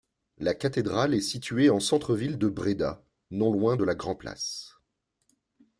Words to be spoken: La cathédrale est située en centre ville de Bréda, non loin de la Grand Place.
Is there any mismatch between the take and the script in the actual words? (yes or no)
no